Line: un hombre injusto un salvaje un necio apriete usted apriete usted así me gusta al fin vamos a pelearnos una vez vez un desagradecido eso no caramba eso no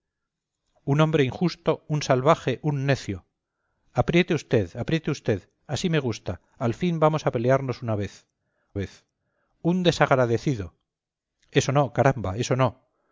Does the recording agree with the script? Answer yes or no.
yes